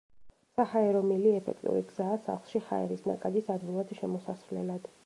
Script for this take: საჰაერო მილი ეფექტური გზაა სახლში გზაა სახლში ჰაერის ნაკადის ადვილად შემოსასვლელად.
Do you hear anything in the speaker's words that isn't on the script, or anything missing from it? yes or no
yes